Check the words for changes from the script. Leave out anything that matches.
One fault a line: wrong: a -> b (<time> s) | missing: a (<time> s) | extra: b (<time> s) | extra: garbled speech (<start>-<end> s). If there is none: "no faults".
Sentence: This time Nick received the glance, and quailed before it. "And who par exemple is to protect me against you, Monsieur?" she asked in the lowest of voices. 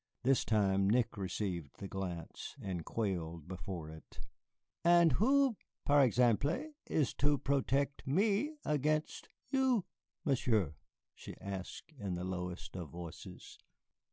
no faults